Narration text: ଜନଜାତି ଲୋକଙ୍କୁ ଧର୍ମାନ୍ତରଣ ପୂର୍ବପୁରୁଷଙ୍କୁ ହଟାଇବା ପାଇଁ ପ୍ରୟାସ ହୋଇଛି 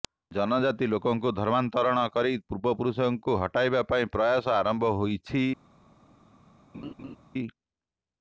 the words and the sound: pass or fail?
fail